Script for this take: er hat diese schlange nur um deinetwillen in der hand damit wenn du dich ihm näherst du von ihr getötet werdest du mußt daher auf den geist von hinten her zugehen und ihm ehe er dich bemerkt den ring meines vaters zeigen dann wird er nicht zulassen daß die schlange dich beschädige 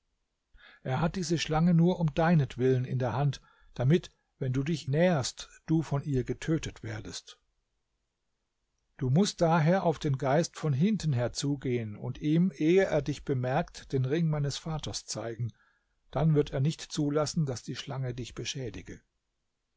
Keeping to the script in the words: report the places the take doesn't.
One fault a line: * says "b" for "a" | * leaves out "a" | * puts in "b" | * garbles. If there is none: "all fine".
* leaves out "ihm"